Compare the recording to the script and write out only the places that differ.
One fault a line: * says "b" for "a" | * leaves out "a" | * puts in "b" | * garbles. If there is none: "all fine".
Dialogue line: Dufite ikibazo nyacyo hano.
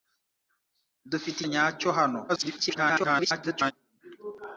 * leaves out "ikibazo"
* garbles